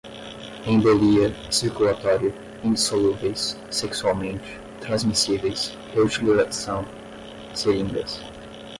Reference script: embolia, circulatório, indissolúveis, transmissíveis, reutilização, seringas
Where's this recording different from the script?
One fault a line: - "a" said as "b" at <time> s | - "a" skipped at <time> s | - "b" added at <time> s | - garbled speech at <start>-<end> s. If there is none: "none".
- "sexualmente" added at 3.7 s